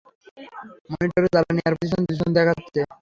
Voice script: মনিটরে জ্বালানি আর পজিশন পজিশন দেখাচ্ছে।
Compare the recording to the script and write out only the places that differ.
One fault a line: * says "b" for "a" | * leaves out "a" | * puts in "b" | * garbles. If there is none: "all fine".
all fine